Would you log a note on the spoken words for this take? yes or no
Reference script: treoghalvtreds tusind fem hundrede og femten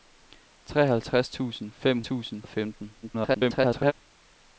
yes